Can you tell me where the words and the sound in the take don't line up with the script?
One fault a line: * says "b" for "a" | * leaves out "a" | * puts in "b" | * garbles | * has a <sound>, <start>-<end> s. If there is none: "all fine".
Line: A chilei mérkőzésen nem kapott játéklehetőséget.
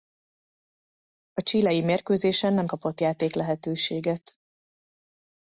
all fine